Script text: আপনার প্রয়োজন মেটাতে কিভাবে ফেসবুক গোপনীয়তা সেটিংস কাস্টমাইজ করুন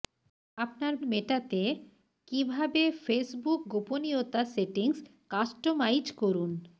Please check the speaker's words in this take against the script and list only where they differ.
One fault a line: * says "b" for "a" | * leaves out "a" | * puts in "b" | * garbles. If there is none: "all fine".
* leaves out "প্রয়োজন"